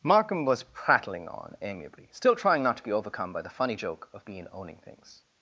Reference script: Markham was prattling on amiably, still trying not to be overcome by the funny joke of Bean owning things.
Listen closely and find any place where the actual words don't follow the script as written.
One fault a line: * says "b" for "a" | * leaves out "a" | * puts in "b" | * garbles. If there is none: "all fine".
all fine